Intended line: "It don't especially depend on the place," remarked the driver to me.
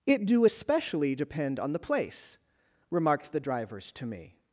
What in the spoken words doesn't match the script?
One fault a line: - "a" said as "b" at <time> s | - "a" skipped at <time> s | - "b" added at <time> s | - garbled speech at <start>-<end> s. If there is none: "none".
- "don't" said as "do" at 0.2 s
- "driver" said as "drivers" at 3.4 s